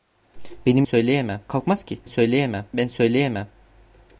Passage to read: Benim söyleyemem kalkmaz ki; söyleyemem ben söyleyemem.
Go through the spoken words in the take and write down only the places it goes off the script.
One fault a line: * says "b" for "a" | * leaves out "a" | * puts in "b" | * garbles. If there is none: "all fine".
all fine